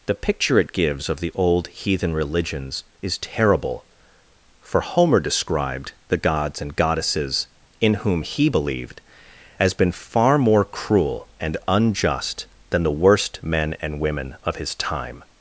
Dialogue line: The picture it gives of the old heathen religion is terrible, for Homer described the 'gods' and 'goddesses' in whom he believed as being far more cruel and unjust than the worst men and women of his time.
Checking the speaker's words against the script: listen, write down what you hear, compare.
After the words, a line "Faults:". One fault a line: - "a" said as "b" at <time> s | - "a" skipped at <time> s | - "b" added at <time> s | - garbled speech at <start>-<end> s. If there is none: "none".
The picture it gives of the old heathen religions is terrible, for Homer described the 'gods' and 'goddesses' in whom he believed as been far more cruel and unjust than the worst men and women of his time.
Faults:
- "religion" said as "religions" at 2.1 s
- "being" said as "been" at 9.7 s